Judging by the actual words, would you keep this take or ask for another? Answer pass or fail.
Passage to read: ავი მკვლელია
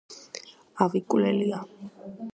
pass